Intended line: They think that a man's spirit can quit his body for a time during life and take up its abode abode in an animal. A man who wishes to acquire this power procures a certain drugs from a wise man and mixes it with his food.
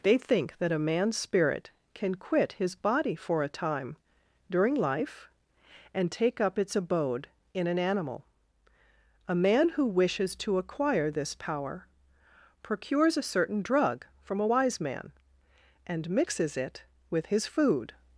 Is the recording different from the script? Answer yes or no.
yes